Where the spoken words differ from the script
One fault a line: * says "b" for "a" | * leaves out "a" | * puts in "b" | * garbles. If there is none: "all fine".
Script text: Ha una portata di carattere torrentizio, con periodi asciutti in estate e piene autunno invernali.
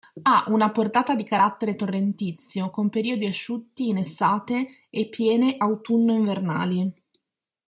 all fine